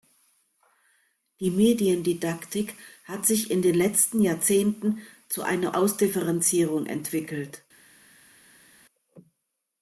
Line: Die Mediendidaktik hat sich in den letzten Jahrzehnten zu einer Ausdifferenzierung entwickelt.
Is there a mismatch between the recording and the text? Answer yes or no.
no